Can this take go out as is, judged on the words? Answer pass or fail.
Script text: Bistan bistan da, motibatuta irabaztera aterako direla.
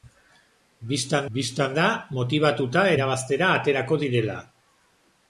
pass